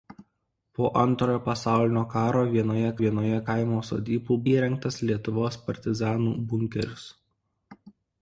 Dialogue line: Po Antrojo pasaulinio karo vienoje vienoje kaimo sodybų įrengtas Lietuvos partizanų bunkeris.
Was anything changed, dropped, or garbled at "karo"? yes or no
no